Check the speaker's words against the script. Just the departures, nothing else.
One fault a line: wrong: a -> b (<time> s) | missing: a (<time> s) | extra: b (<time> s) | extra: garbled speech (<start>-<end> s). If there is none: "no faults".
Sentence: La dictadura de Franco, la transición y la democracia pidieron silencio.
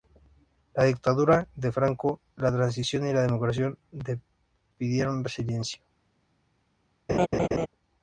no faults